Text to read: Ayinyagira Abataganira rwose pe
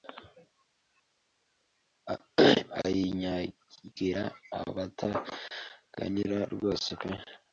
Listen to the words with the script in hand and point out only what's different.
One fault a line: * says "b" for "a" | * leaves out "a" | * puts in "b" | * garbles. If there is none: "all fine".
all fine